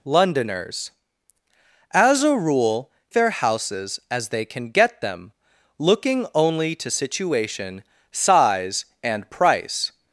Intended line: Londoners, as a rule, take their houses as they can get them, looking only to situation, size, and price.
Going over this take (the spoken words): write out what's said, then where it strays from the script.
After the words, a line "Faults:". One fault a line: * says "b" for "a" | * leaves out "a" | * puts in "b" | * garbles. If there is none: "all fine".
Londoners, as a rule, their houses as they can get them, looking only to situation, size, and price.
Faults:
* leaves out "take"